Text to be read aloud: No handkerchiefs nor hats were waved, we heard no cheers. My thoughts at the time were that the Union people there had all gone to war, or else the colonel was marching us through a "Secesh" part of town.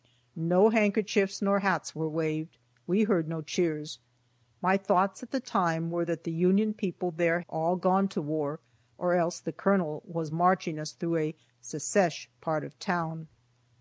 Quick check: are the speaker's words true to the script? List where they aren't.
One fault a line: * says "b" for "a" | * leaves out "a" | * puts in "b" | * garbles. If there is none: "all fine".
* leaves out "had"